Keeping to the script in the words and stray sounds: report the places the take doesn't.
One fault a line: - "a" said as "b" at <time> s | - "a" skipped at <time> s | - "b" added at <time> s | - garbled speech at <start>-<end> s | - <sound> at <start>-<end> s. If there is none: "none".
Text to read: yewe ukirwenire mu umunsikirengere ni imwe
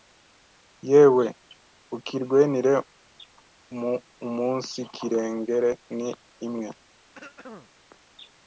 - throat clearing at 7.1-7.7 s